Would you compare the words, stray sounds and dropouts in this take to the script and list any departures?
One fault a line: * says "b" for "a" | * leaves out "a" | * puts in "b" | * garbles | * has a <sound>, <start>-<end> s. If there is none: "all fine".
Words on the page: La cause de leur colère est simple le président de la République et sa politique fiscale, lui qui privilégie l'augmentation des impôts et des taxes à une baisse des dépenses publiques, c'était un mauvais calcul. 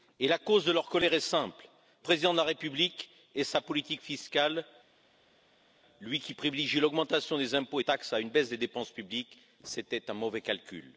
* leaves out "le"
* leaves out "des"